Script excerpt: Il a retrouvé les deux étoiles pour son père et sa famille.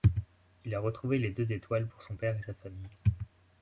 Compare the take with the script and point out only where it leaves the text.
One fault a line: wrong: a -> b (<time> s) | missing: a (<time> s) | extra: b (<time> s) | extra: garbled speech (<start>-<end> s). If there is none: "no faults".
no faults